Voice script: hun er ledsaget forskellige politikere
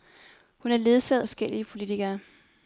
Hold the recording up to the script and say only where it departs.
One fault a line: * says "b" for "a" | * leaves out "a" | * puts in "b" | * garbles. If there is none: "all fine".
all fine